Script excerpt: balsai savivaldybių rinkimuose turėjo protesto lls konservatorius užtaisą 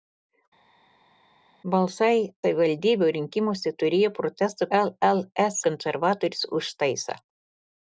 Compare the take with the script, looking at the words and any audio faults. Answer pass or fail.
pass